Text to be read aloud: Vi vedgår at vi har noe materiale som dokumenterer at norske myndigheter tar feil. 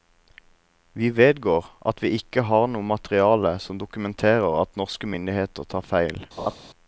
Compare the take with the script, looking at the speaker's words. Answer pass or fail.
fail